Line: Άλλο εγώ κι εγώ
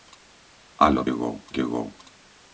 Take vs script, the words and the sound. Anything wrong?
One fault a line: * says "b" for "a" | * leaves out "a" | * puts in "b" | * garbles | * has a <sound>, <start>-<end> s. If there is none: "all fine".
all fine